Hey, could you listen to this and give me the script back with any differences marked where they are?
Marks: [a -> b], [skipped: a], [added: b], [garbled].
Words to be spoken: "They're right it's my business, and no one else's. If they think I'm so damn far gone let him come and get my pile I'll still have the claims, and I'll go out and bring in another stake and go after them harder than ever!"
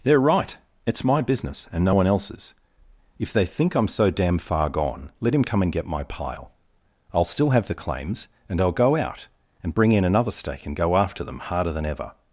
"They're right it's my business, and no one else's. If they think I'm so damn far gone let him come and get my pile I'll still have the claims, and I'll go out and bring in another stake and go after them harder than ever!"